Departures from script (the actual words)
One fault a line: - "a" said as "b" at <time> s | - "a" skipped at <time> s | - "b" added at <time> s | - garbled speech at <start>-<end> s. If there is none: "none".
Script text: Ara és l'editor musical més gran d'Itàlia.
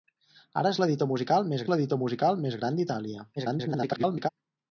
- "l'editor musical més" added at 1.7 s
- garbled speech at 3.4-4.3 s